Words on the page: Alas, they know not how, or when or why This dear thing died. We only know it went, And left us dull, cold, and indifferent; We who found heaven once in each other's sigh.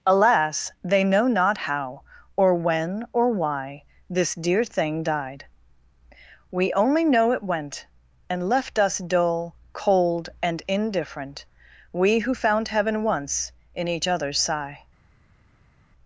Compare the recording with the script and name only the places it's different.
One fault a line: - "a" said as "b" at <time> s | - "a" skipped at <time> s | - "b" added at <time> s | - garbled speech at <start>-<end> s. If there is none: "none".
none